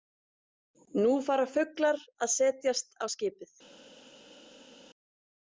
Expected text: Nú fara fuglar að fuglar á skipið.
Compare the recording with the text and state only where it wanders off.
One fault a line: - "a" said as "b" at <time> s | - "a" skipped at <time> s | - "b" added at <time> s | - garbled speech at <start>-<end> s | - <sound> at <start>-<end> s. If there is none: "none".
- "fuglar" said as "setjast" at 2.4 s